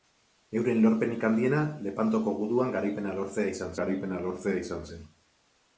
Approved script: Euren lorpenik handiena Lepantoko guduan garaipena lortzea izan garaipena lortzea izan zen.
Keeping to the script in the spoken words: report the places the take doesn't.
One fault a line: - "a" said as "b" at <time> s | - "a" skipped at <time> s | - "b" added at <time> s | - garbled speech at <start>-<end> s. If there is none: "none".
none